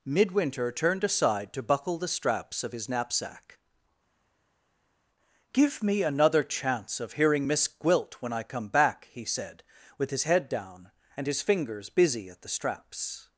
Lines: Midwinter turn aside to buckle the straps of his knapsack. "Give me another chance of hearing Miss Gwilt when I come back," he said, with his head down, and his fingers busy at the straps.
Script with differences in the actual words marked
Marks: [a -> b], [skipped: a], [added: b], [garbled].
Midwinter [turn -> turned] aside to buckle the straps of his knapsack. "Give me another chance of hearing Miss Gwilt when I come back," he said, with his head down, and his fingers busy at the straps.